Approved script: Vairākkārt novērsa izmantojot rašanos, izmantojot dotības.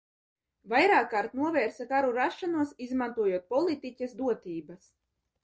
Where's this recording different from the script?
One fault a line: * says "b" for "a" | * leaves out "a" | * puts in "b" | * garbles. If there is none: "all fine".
* says "karu" for "izmantojot"
* puts in "politiķes"